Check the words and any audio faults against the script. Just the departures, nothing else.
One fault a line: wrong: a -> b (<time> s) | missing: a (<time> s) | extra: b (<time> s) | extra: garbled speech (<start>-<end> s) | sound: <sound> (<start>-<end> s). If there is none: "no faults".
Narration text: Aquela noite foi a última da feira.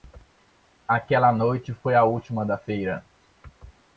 no faults